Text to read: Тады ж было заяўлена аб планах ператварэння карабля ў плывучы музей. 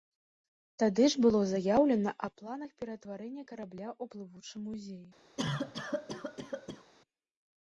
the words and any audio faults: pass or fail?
fail